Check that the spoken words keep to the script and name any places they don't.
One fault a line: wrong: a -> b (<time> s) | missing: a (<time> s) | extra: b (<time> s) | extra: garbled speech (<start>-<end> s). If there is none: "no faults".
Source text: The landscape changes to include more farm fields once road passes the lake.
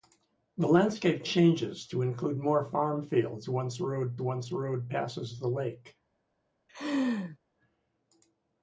extra: once road (4.2 s)